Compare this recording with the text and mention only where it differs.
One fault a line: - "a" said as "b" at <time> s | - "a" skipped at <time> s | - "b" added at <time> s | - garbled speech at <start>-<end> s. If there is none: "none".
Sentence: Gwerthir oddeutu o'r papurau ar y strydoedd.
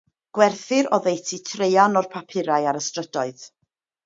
- "traean" added at 1.5 s